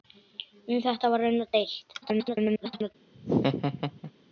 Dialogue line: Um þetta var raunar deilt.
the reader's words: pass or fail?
fail